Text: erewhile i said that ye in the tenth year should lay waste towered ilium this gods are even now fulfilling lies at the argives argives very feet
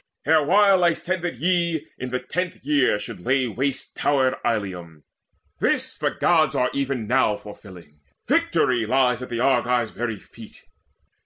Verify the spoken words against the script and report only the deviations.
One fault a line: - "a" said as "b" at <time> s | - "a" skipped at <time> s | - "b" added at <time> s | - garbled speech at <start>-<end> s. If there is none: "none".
- "the" added at 6.0 s
- "victory" added at 8.3 s
- "argives" skipped at 9.9 s